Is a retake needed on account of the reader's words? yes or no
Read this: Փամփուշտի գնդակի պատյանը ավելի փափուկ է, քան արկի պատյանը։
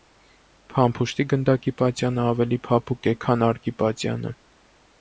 no